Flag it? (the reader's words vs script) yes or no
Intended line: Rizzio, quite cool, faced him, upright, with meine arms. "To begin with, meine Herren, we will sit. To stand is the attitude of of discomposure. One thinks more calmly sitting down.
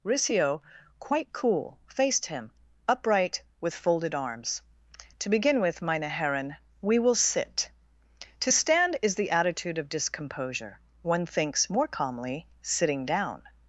yes